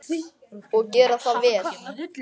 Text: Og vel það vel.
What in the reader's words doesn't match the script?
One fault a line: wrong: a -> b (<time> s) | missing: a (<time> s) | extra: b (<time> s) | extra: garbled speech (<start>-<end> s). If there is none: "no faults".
wrong: vel -> gera (0.9 s)